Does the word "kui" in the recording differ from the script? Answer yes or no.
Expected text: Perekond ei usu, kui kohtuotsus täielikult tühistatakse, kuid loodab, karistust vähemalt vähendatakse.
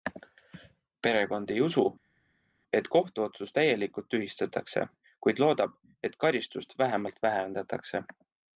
yes